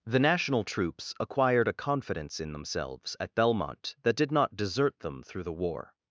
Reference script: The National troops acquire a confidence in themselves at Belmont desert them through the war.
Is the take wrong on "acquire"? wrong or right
wrong